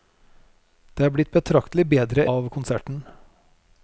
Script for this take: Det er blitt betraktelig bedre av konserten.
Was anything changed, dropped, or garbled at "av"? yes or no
no